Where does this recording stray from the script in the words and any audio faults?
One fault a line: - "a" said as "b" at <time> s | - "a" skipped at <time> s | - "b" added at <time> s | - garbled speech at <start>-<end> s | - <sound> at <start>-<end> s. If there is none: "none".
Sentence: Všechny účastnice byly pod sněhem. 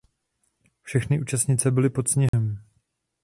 - dropout at 2.3-2.3 s